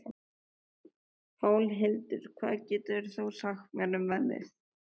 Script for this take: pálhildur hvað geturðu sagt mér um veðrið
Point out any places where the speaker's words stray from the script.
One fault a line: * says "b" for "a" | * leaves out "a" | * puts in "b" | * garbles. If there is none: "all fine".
all fine